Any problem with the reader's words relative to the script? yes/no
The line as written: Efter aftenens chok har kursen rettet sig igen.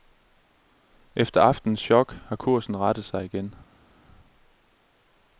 no